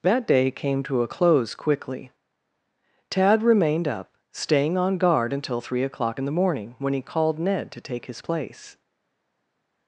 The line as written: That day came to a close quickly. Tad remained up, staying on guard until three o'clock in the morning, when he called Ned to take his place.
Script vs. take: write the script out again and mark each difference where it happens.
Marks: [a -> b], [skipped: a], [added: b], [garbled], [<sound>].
That day came to a close quickly. Tad remained up, staying on guard until three o'clock in the morning, when he called Ned to take his place.